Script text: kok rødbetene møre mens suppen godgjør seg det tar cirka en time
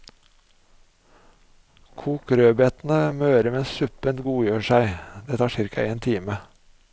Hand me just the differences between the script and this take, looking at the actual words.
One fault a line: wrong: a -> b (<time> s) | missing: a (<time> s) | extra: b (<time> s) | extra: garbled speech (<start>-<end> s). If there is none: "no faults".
no faults